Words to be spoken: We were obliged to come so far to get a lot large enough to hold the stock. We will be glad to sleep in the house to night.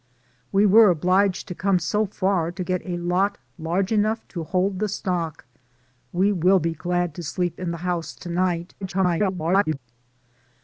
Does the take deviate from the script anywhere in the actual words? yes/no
yes